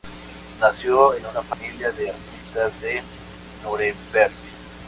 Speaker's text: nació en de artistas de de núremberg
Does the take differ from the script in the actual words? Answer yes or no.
yes